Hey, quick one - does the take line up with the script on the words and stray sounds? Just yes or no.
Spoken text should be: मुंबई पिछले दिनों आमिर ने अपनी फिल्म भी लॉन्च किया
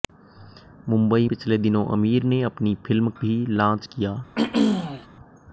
no